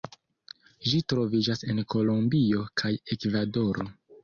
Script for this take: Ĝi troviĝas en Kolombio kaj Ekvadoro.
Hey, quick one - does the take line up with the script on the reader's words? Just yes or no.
yes